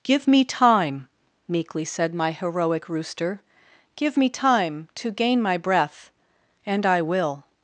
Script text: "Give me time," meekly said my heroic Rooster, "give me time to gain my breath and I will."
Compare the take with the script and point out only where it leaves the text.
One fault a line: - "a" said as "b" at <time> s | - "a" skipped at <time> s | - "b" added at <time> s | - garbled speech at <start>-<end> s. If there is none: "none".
none